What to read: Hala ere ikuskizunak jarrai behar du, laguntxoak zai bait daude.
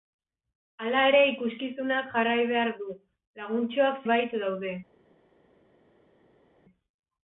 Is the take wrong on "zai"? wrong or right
wrong